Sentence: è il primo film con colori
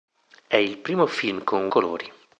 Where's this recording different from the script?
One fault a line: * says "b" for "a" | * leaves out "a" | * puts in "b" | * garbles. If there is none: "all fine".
all fine